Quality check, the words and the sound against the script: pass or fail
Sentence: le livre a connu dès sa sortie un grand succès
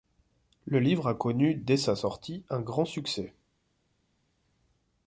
pass